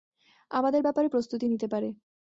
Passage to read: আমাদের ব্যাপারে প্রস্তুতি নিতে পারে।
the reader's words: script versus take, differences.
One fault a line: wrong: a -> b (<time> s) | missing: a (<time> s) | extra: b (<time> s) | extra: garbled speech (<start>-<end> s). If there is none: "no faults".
no faults